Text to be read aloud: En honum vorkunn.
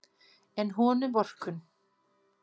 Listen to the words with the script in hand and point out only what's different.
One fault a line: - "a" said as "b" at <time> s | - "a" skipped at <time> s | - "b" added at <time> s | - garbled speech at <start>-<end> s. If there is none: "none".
none